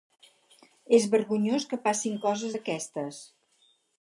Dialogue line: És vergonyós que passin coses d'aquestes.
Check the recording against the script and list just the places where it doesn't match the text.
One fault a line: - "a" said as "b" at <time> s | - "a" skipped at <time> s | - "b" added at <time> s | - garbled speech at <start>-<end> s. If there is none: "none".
none